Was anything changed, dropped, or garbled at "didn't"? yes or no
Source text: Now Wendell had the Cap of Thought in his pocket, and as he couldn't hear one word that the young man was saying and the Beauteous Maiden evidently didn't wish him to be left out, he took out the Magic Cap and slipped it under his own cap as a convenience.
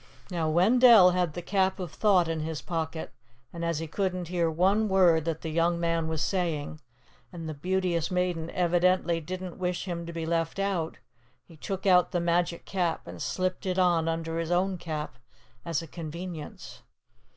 no